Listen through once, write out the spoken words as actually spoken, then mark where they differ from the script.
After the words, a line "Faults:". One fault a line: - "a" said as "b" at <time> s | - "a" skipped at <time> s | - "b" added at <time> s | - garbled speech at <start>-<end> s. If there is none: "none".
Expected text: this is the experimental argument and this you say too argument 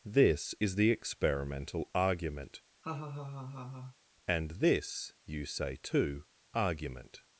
this is the experimental argument and this you say too argument
Faults:
none